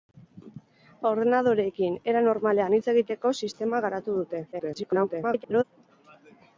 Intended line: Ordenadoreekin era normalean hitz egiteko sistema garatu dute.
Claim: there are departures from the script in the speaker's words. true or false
true